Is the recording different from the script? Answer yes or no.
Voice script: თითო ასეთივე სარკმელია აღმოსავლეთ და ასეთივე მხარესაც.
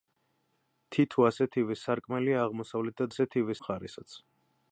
no